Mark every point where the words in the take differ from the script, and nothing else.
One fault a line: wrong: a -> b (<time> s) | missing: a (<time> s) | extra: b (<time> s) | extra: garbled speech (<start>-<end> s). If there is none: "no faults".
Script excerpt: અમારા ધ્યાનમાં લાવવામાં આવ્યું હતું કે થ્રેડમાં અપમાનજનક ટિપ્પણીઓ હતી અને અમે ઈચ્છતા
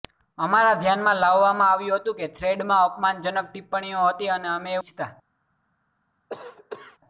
no faults